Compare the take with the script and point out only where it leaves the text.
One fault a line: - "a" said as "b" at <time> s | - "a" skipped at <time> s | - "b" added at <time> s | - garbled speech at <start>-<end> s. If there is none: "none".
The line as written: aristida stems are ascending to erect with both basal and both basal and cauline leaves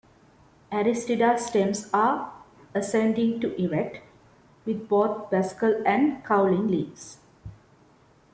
- "both basal and" skipped at 6.2 s